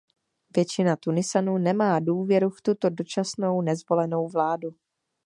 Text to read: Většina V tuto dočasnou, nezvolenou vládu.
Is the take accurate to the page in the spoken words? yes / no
no